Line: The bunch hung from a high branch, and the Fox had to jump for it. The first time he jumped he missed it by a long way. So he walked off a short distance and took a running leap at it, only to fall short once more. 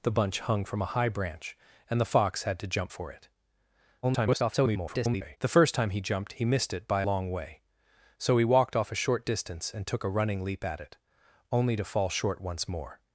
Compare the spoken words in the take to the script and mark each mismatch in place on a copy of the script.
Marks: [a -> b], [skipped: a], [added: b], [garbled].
The bunch hung from a high branch, and the Fox had to jump for it. [garbled] The first time he jumped he missed it by [skipped: a] long way. So he walked off a short distance and took a running leap at it, only to fall short once more.